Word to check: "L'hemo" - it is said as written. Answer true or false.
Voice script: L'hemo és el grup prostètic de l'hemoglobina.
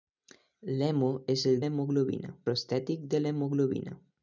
true